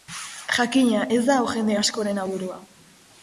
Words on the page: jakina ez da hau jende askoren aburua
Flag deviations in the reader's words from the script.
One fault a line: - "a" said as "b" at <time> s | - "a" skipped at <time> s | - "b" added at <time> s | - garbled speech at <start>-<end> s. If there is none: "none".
none